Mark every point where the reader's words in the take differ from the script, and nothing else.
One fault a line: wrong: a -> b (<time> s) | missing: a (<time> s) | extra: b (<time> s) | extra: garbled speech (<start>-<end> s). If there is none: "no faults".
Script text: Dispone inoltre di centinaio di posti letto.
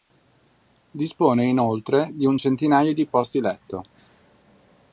extra: un (2.2 s)